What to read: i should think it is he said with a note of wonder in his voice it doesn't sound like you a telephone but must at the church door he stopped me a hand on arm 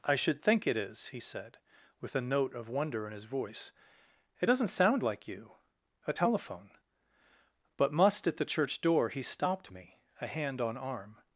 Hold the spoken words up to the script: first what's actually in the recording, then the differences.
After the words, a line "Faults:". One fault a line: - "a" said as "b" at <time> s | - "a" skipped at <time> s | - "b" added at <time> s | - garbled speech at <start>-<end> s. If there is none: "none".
i should think it is he said with a note of wonder in his voice it doesn't sound like you a telephone but must at the church door he stopped me a hand on arm
Faults:
none